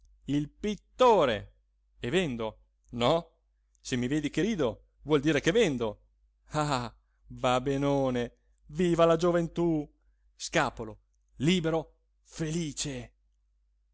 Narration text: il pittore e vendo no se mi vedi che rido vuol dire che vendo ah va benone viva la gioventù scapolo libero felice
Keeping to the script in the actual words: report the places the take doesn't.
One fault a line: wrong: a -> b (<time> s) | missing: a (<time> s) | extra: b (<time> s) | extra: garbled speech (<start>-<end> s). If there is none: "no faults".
no faults